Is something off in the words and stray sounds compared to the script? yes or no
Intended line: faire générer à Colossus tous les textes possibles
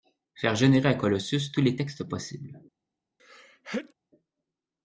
yes